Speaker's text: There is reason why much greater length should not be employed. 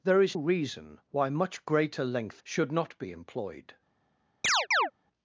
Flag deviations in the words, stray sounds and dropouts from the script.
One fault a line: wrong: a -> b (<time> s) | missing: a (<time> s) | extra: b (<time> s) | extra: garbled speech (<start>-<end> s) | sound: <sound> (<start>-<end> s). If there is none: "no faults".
sound: chirp (4.4-4.9 s)